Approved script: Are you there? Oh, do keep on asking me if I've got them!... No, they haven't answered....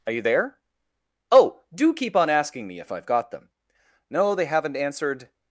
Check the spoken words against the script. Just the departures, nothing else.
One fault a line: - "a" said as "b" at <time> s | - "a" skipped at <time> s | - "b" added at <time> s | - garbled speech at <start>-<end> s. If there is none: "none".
none